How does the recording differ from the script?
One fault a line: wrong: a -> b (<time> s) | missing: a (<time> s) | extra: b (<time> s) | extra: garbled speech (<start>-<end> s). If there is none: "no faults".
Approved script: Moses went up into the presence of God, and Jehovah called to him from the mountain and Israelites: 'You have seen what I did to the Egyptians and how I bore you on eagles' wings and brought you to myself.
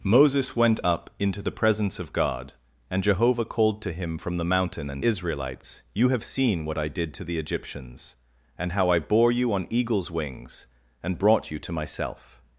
no faults